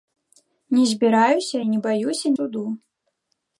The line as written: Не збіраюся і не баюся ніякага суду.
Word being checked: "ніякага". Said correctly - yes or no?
no